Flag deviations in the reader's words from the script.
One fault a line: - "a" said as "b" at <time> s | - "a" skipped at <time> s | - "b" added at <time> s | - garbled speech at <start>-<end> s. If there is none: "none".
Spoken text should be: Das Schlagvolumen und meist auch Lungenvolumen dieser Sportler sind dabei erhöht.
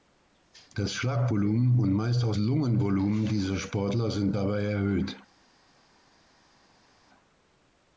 none